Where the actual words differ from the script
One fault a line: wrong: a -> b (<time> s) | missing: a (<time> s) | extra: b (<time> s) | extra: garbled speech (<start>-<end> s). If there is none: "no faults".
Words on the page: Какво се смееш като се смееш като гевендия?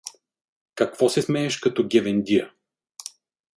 missing: се смееш като (1.9 s)